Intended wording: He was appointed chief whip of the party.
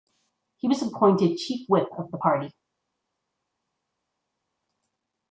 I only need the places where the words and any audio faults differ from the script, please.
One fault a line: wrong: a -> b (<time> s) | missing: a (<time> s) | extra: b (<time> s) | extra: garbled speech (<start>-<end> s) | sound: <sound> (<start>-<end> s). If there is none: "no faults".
no faults